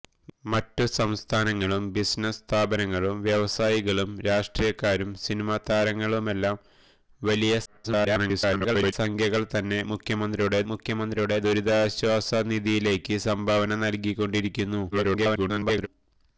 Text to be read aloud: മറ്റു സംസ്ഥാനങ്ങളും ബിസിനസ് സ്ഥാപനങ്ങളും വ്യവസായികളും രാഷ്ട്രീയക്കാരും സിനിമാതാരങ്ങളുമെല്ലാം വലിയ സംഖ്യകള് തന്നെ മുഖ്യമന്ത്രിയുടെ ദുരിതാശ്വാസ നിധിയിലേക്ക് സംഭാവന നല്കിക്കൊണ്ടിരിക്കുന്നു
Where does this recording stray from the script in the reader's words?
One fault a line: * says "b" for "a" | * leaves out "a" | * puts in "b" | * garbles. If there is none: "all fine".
* garbles
* puts in "മുഖ്യമന്ത്രിയുടെ"
* garbles